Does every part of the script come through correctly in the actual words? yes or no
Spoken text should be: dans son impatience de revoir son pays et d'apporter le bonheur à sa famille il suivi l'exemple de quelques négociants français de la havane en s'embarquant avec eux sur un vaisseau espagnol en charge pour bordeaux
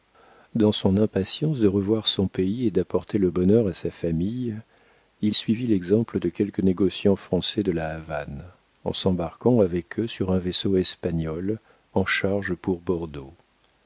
yes